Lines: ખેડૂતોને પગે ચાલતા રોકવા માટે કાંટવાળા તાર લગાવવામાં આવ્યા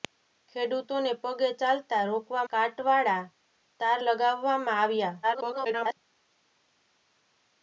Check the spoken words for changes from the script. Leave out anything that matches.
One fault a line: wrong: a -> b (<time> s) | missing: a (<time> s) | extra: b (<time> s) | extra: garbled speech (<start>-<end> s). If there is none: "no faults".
missing: માટે (2.5 s)
extra: garbled speech (5.2-6.0 s)